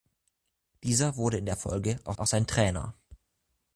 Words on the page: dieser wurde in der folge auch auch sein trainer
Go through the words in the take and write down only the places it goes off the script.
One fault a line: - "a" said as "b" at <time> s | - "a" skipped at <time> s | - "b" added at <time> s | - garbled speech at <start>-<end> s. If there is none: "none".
none